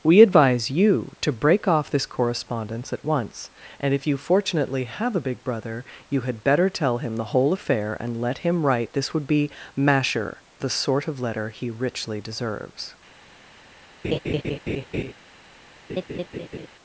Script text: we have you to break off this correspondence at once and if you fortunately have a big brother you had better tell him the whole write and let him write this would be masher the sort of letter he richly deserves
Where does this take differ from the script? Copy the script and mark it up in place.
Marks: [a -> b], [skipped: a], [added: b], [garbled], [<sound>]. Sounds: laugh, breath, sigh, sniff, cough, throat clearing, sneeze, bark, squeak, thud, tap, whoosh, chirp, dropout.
we [have -> advise] you to break off this correspondence at once and if you fortunately have a big brother you had better tell him the whole [write -> affair] and let him write this would be masher the sort of letter he richly deserves [laugh] [laugh]